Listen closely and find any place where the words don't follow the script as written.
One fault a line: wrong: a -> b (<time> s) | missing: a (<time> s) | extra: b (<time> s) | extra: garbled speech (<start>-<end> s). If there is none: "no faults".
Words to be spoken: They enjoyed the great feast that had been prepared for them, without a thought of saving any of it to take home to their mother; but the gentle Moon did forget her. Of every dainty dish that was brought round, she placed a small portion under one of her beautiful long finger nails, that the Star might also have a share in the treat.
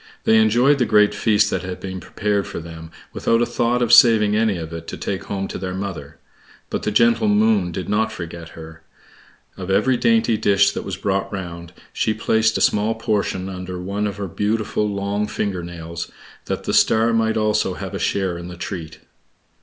extra: not (7.9 s)